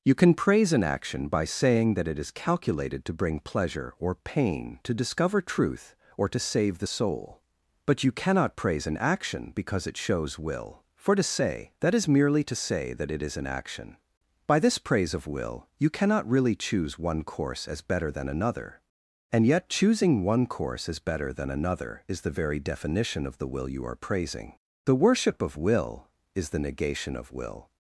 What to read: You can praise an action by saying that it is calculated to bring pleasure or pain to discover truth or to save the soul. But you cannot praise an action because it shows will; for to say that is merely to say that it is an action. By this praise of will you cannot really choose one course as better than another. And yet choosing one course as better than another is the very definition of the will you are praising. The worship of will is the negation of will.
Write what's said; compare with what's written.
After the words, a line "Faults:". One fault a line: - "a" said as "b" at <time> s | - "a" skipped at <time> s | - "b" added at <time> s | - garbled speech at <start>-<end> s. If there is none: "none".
You can praise an action by saying that it is calculated to bring pleasure or pain to discover truth or to save the soul. But you cannot praise an action because it shows will; for to say that is merely to say that it is an action. By this praise of will you cannot really choose one course as better than another. And yet choosing one course as better than another is the very definition of the will you are praising. The worship of will is the negation of will.
Faults:
none